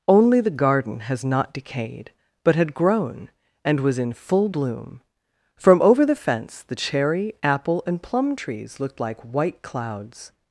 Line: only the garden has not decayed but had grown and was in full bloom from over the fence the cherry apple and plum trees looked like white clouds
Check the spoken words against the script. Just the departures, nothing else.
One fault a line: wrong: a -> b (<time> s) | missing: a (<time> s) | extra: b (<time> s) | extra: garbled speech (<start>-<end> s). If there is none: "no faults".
no faults